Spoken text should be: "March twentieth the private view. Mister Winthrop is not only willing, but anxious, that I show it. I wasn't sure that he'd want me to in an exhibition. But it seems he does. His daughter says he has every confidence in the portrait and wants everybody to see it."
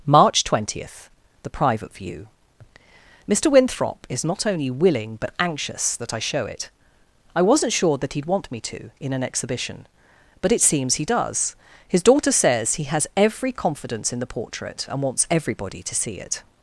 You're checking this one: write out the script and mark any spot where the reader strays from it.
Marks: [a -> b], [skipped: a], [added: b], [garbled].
"March twentieth the private view. Mister Winthrop is not only willing, but anxious, that I show it. I wasn't sure that he'd want me to in an exhibition. But it seems he does. His daughter says he has every confidence in the portrait and wants everybody to see it."